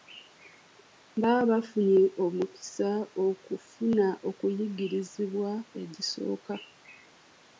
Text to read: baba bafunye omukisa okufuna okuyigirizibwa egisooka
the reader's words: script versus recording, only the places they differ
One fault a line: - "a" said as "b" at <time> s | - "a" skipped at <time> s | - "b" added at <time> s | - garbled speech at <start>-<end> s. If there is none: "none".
none